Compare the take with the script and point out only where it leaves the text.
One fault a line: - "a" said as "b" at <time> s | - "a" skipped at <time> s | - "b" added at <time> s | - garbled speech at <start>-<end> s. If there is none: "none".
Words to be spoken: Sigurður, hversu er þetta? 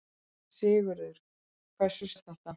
none